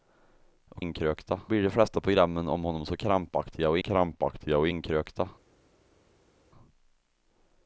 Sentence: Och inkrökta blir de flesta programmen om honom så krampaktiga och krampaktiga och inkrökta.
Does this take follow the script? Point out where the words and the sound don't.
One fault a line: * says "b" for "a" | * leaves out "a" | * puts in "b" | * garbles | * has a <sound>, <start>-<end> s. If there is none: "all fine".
all fine